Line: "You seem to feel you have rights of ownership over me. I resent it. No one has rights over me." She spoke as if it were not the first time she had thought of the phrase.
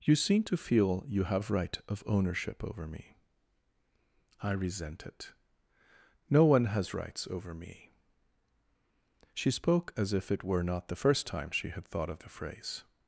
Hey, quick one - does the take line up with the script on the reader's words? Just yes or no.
no